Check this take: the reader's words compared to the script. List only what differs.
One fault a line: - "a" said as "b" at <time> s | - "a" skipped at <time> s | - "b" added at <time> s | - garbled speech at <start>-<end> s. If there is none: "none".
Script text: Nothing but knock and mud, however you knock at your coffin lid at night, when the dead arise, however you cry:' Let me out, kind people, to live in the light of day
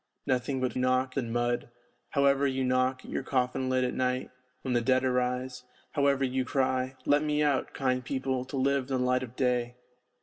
none